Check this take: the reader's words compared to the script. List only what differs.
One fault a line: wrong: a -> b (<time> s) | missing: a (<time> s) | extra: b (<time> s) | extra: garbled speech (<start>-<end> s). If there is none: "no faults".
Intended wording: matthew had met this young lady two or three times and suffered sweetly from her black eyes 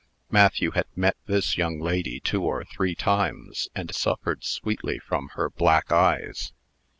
no faults